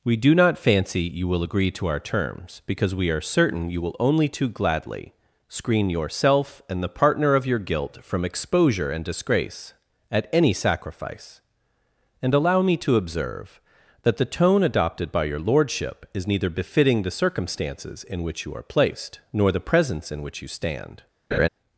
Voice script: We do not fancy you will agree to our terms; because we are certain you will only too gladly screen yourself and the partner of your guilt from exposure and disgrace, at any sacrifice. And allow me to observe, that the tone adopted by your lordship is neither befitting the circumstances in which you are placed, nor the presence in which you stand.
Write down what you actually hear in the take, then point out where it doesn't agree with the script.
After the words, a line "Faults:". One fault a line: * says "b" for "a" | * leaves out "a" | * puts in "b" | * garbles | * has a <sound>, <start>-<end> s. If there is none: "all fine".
We do not fancy you will agree to our terms; because we are certain you will only too gladly screen yourself and the partner of your guilt from exposure and disgrace, at any sacrifice. And allow me to observe, that the tone adopted by your lordship is neither befitting the circumstances in which you are placed, nor the presence in which you stand.
Faults:
* has a laugh, 21.3-21.5 s